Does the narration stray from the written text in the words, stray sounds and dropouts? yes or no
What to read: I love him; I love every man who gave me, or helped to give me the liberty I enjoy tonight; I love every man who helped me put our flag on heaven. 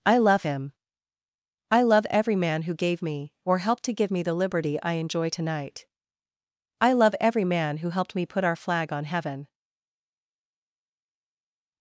no